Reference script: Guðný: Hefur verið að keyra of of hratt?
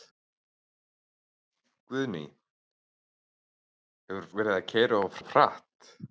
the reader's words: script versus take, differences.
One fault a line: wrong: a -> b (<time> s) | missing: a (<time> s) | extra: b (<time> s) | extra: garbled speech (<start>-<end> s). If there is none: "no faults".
no faults